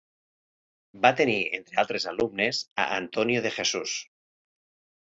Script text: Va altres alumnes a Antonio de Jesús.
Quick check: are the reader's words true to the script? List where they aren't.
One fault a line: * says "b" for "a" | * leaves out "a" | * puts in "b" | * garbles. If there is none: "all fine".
* puts in "tenir entre"